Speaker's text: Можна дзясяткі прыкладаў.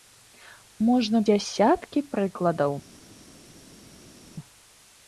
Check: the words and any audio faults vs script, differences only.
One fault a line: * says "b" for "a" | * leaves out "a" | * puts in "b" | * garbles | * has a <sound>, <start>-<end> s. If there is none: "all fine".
all fine